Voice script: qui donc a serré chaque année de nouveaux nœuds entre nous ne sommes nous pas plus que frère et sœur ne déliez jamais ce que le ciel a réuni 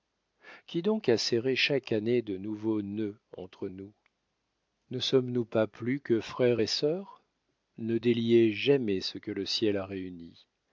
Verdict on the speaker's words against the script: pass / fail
pass